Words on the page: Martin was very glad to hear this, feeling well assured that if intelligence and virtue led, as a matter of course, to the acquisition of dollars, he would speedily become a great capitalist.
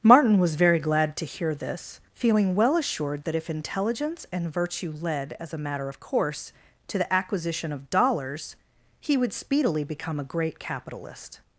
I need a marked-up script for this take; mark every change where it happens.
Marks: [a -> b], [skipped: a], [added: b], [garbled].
Martin was very glad to hear this, feeling well assured that if intelligence and virtue led, as a matter of course, to the acquisition of dollars, he would speedily become a great capitalist.